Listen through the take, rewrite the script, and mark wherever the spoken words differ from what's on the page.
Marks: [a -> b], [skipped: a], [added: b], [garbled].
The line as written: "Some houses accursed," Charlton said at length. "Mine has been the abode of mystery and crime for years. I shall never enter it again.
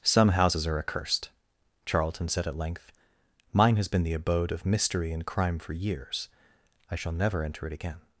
"Some houses [added: are] accursed," Charlton said at length. "Mine has been the abode of mystery and crime for years. I shall never enter it again.